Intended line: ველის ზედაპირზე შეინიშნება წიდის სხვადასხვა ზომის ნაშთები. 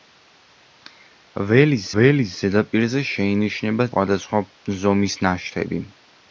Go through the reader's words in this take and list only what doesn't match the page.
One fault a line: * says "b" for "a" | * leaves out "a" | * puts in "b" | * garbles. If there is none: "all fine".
* puts in "ველის"
* leaves out "წიდის"